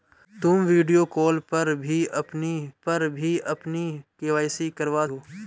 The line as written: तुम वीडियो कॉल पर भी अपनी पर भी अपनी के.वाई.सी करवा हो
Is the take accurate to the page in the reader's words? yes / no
yes